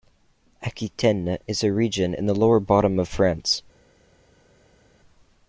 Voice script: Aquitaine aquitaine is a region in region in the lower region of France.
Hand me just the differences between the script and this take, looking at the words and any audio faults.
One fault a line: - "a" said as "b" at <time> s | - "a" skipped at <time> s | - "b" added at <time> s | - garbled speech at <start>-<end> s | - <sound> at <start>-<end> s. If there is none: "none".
- "aquitaine" skipped at 1.4 s
- "region in" skipped at 2.3 s
- "region" said as "bottom" at 2.6 s